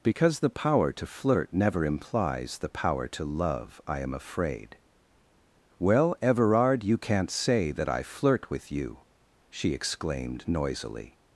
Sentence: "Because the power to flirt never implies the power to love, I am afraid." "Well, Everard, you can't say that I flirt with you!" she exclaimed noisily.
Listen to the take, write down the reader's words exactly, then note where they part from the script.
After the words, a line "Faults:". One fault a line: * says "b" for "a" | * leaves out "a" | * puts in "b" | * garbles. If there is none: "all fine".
"Because the power to flirt never implies the power to love, I am afraid." "Well, Everard, you can't say that I flirt with you!" she exclaimed noisily.
Faults:
all fine